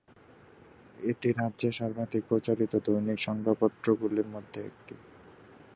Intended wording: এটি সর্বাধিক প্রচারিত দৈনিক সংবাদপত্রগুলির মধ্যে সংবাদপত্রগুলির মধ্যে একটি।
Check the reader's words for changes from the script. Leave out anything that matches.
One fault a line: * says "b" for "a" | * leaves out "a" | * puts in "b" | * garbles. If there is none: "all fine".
* puts in "রাজ্যের"
* leaves out "সংবাদপত্রগুলির মধ্যে"